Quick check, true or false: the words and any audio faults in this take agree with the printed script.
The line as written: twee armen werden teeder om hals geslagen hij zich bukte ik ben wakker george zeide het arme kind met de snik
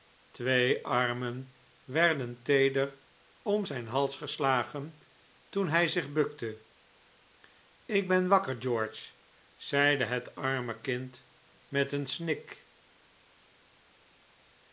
false